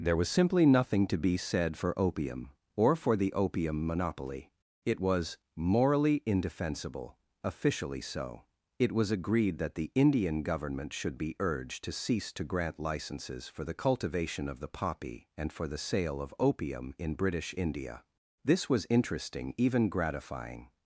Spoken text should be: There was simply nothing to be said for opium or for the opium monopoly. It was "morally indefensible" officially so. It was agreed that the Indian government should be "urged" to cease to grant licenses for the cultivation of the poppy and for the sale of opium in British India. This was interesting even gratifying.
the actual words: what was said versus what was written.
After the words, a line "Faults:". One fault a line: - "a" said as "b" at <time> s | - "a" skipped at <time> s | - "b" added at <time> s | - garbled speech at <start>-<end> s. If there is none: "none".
There was simply nothing to be said for opium or for the opium monopoly. It was "morally indefensible" officially so. It was agreed that the Indian government should be "urged" to cease to grant licenses for the cultivation of the poppy and for the sale of opium in British India. This was interesting even gratifying.
Faults:
none